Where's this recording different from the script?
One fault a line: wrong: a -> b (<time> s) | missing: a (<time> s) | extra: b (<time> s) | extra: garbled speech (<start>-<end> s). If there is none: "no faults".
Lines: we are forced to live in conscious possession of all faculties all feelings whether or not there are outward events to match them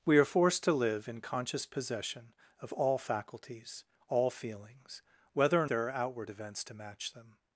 missing: not (5.7 s)